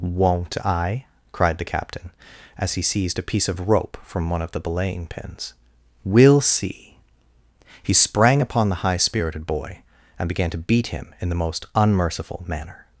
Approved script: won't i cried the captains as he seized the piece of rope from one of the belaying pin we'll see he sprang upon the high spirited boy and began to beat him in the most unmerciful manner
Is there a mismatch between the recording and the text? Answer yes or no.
yes